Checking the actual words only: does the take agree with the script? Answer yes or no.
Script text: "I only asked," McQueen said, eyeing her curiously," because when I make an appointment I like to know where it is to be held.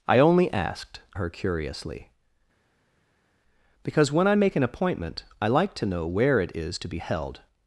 no